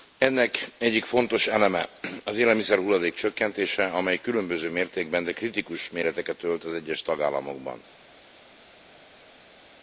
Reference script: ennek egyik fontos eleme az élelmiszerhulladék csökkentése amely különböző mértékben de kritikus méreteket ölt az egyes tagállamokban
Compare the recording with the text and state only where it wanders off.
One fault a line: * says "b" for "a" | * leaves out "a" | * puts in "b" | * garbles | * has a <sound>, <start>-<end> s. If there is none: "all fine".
all fine